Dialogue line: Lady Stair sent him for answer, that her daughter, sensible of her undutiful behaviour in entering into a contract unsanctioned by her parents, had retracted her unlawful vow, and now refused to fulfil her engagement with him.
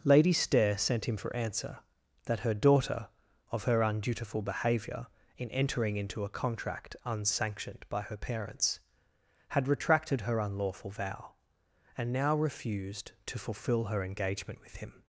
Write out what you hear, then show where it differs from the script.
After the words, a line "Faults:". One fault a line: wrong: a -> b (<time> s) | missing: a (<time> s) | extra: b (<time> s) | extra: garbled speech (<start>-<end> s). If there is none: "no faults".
Lady Stair sent him for answer, that her daughter, of her undutiful behaviour in entering into a contract unsanctioned by her parents, had retracted her unlawful vow, and now refused to fulfil her engagement with him.
Faults:
missing: sensible (3.1 s)